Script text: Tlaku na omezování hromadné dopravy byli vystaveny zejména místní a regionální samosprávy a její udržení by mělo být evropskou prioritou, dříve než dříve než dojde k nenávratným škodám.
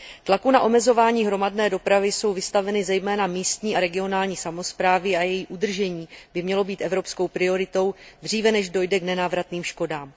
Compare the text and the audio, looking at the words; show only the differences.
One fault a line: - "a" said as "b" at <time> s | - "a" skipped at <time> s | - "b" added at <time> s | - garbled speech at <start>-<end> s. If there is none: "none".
- "byli" said as "jsou" at 2.1 s
- "dříve než" skipped at 8.7 s